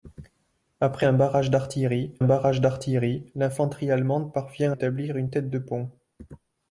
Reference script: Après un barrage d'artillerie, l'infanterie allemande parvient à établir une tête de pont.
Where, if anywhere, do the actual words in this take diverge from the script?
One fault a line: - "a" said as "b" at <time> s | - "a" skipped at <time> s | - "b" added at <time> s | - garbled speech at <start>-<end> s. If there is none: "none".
- "barrage d'artillerie" added at 2.2 s
- "à" skipped at 4.7 s